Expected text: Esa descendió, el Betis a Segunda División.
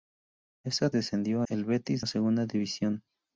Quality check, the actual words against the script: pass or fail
pass